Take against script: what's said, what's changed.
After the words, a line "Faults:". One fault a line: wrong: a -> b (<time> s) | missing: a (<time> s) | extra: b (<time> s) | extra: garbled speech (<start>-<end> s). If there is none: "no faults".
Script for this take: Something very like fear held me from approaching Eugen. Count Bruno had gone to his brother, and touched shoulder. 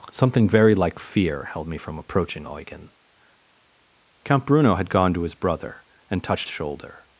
Something very like fear held me from approaching Eugen. Count Bruno had gone to his brother, and touched shoulder.
Faults:
no faults